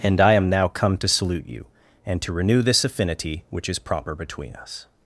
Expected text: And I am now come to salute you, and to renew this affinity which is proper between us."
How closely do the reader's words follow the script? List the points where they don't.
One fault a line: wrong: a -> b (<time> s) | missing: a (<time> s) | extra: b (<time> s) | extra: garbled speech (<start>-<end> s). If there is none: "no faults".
no faults